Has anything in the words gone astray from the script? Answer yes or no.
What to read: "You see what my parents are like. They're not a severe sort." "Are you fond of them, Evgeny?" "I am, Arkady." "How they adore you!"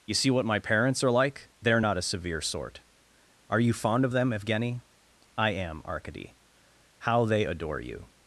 no